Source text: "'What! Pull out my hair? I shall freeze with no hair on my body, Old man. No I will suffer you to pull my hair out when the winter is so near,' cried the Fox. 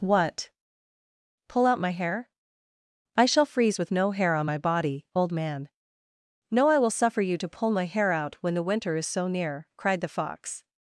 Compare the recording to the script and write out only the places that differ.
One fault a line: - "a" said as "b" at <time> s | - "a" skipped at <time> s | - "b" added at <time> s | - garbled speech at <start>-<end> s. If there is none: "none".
none